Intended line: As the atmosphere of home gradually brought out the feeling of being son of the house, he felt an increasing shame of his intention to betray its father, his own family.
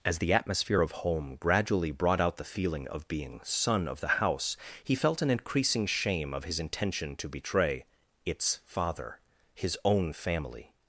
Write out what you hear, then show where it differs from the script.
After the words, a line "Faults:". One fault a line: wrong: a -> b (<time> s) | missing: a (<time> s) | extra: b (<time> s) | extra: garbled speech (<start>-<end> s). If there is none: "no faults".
As the atmosphere of home gradually brought out the feeling of being son of the house, he felt an increasing shame of his intention to betray its father, his own family.
Faults:
no faults